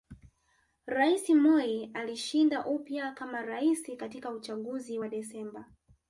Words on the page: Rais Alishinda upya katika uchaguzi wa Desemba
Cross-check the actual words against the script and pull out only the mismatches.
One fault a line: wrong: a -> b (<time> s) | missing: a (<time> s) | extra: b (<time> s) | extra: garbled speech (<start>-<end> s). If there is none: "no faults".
extra: Moi (1.3 s)
extra: kama Rais (3.1 s)